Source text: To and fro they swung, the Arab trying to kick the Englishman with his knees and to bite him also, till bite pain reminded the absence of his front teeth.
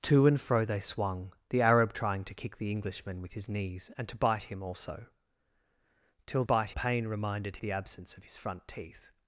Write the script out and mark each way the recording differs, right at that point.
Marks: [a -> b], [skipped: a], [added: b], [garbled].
To and fro they swung, the Arab trying to kick the Englishman with his knees and to bite him also, till bite pain reminded the absence of his front teeth.